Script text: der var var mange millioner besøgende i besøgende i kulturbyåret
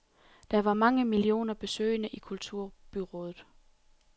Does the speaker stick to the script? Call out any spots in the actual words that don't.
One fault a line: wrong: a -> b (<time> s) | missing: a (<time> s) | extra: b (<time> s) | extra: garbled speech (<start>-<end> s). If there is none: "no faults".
missing: var (0.7 s)
missing: besøgende i (2.2 s)